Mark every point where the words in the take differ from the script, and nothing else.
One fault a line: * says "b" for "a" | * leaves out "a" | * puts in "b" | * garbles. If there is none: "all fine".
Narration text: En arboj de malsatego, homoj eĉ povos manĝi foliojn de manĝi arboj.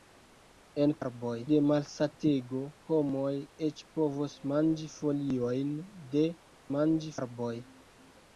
all fine